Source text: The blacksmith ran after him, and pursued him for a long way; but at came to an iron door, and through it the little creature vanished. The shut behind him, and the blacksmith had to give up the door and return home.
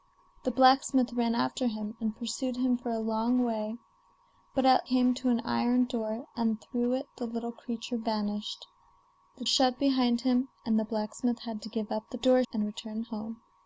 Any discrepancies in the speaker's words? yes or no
no